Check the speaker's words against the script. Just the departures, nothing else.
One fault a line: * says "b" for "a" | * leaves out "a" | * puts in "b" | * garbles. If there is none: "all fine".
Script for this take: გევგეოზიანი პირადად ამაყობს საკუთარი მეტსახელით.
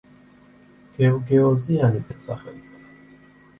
* leaves out "პირადად ამაყობს საკუთარი"